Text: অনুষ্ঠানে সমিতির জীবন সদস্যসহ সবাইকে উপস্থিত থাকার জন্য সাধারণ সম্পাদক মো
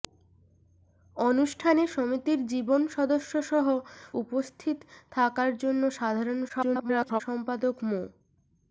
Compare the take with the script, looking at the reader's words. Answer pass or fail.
fail